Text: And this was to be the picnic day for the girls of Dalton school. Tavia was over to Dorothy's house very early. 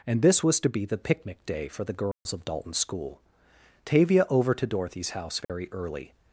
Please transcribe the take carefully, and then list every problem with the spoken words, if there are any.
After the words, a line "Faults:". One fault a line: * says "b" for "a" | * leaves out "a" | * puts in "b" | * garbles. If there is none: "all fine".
And this was to be the picnic day for the girls of Dalton school. Tavia over to Dorothy's house very early.
Faults:
* leaves out "was"